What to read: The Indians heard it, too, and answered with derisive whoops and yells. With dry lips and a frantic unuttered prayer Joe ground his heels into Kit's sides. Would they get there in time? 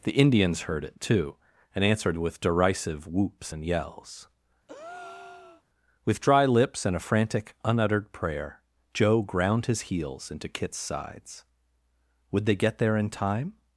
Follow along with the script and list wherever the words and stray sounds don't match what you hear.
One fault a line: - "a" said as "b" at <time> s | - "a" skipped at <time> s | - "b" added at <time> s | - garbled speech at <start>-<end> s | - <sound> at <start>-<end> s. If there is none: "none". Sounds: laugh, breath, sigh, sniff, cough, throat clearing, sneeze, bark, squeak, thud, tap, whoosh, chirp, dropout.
- breath at 4.7-5.6 s